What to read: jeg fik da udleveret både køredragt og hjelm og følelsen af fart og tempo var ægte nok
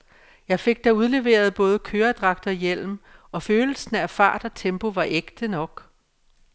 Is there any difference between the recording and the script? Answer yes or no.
no